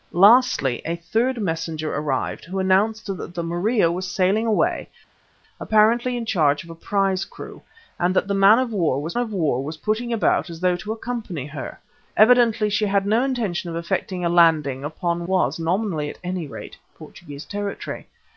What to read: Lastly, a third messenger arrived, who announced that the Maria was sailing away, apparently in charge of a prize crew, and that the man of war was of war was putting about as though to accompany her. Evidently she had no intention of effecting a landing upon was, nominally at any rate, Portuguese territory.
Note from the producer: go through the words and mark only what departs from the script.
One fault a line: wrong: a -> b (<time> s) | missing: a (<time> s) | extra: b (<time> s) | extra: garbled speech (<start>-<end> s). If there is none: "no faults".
no faults